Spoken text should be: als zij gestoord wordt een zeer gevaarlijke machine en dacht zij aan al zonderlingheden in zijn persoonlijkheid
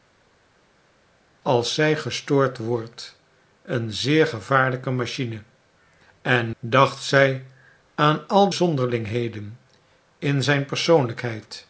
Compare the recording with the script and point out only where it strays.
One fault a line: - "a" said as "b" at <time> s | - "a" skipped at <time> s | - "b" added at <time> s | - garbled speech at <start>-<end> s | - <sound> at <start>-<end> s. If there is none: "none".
none